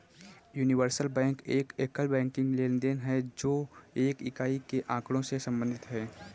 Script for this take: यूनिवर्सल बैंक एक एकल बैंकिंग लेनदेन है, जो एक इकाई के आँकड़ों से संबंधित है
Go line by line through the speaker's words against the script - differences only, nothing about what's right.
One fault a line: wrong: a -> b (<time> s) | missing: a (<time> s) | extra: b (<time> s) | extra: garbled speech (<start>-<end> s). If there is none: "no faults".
no faults